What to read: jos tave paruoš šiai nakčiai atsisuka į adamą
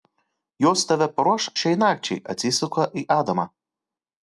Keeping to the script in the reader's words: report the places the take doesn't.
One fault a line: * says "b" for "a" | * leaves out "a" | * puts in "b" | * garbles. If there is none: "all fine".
all fine